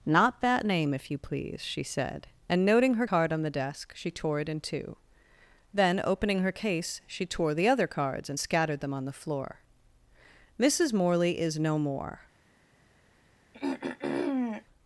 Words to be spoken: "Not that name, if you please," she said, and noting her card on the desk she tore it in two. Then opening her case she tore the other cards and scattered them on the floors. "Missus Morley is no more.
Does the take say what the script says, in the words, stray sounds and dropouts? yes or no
no